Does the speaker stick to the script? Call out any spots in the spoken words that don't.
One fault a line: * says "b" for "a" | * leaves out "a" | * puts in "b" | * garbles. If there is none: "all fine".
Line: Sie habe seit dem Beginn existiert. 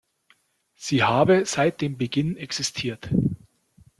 all fine